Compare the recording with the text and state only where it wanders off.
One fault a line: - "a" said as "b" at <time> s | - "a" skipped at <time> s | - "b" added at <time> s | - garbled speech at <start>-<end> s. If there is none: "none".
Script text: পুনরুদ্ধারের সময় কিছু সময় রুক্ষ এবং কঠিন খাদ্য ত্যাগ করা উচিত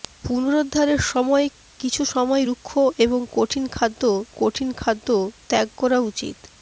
- "কঠিন খাদ্য" added at 4.4 s